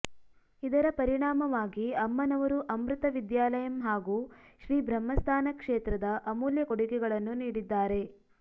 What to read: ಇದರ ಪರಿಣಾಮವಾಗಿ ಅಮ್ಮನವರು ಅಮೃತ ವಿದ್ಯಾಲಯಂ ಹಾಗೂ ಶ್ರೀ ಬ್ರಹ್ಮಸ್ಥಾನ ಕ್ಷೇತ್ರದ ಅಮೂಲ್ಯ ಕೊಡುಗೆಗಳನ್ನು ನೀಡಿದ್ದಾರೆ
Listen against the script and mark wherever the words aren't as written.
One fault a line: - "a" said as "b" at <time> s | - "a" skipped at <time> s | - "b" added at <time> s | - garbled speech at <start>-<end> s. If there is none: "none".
none